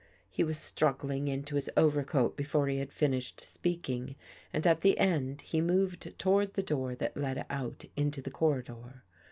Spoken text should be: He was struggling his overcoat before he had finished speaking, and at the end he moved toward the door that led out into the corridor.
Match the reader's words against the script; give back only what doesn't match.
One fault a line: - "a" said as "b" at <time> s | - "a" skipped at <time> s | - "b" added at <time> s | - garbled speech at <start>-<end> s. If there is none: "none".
- "into" added at 1.3 s